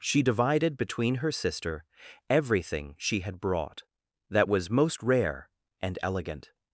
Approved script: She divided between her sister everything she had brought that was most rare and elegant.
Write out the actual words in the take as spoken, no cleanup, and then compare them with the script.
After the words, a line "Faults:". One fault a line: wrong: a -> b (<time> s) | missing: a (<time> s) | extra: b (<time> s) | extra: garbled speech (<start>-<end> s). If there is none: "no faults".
She divided between her sister everything she had brought that was most rare and elegant.
Faults:
no faults